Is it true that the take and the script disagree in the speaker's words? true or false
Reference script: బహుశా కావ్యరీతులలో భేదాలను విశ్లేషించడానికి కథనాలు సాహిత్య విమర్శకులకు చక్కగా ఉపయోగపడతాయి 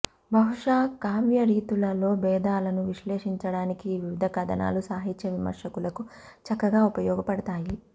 true